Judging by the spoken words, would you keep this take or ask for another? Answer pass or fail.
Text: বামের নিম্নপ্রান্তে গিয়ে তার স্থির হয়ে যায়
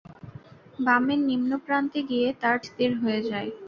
pass